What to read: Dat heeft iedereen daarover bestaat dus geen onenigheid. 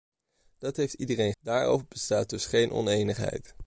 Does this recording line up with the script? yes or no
yes